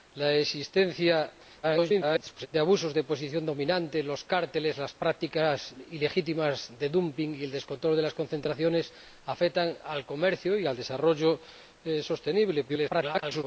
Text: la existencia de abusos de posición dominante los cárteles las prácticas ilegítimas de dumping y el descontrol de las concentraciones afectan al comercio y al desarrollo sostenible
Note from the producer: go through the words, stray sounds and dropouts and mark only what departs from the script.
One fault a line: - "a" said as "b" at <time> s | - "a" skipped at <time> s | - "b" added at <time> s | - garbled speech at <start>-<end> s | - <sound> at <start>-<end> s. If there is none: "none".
- garbled speech at 1.6-2.5 s
- garbled speech at 12.7-13.4 s